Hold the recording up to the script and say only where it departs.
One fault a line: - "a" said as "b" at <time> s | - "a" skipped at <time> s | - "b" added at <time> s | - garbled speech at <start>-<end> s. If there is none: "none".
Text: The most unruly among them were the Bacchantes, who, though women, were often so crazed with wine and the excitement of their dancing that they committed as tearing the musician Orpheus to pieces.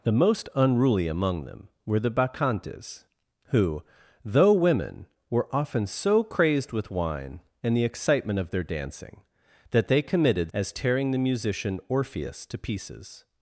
none